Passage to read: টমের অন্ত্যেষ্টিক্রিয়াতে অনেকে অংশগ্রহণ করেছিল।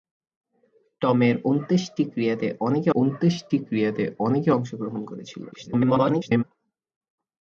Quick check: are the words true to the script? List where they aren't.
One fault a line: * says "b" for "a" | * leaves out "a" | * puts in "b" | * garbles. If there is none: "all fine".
* puts in "অন্ত্যেষ্টিক্রিয়াতে অনেকে"
* garbles